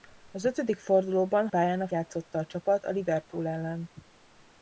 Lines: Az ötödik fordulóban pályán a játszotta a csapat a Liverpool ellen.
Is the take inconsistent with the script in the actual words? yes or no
no